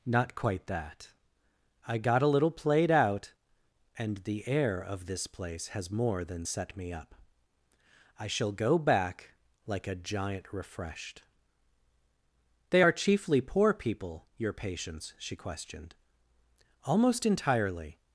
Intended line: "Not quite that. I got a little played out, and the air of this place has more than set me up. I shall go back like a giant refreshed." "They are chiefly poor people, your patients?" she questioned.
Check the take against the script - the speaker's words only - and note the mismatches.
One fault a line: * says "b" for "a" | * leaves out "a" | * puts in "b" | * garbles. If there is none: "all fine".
* puts in "Almost entirely"